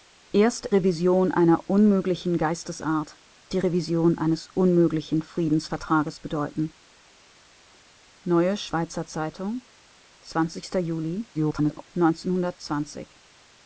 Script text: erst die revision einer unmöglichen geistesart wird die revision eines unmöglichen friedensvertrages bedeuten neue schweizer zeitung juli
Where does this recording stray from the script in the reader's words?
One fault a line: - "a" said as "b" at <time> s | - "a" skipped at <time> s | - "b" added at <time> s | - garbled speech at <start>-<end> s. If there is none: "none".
- "die" skipped at 0.7 s
- "wird" skipped at 3.2 s
- garbled speech at 11.3-11.9 s